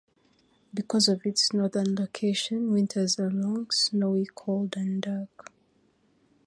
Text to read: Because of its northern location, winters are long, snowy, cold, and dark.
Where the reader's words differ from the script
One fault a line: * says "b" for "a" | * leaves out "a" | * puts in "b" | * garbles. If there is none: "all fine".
all fine